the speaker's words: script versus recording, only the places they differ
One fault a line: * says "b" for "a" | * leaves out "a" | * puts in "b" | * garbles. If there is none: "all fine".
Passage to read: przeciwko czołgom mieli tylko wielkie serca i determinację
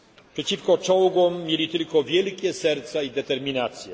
all fine